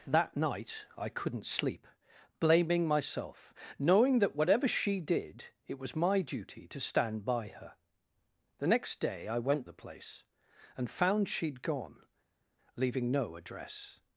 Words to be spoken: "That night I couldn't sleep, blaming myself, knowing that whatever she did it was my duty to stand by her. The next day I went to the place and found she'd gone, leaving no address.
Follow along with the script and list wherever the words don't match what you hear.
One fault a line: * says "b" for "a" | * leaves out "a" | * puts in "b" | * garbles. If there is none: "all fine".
* leaves out "to"